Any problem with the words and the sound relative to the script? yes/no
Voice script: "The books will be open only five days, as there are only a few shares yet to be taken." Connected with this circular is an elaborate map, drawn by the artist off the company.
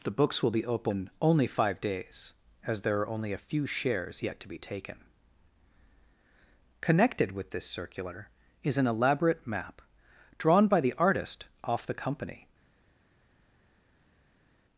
no